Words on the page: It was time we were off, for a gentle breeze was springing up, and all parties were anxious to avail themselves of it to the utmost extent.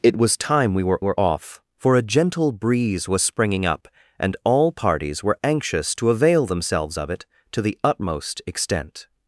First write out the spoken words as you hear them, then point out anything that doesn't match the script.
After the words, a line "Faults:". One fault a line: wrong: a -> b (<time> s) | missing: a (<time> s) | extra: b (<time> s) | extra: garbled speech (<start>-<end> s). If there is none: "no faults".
It was time we were were off, for a gentle breeze was springing up, and all parties were anxious to avail themselves of it to the utmost extent.
Faults:
extra: were (1.0 s)